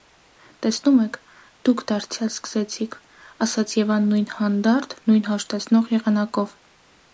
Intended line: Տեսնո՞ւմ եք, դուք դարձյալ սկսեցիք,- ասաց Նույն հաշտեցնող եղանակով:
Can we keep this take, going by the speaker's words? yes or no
no